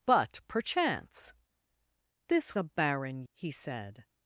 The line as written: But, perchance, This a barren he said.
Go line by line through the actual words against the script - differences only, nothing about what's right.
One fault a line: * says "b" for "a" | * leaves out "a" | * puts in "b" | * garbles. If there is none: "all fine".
all fine